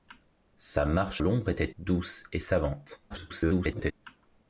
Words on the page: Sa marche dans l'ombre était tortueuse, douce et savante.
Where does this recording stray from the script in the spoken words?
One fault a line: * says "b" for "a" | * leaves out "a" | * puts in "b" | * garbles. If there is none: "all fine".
* leaves out "dans"
* leaves out "tortueuse"
* garbles